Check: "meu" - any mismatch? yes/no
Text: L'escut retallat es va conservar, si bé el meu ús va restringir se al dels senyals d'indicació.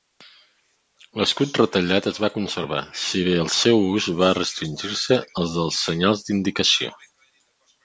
yes